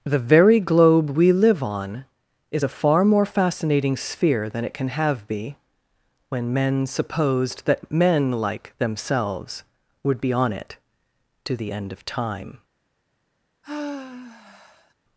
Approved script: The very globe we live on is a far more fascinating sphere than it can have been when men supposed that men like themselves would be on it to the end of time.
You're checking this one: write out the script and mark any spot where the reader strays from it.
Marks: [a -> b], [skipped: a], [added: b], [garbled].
The very globe we live on is a far more fascinating sphere than it can have [been -> be] when men supposed that men like themselves would be on it to the end of time.